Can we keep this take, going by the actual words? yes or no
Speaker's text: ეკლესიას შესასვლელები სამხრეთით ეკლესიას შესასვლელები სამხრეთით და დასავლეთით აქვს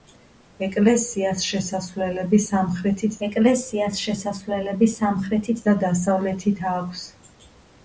yes